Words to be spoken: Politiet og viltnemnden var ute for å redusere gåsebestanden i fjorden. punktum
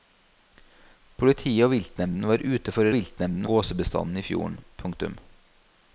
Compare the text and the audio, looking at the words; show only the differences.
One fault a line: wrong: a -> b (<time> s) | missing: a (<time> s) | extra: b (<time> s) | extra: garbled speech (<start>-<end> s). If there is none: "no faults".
wrong: redusere -> viltnemnden (3.0 s)